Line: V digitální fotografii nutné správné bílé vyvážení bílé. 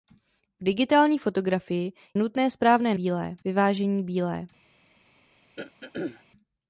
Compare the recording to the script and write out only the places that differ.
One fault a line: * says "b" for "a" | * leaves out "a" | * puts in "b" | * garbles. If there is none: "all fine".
all fine